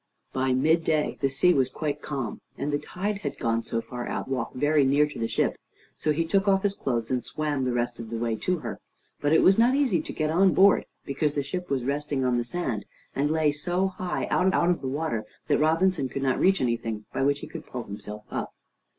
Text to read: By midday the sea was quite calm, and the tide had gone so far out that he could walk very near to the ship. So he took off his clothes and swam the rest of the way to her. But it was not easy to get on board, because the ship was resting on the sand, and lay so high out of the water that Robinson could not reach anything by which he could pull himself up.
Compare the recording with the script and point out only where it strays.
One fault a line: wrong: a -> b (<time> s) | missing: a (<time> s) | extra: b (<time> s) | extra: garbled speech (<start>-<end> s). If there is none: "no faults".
missing: that he could (4.3 s)
extra: out (14.5 s)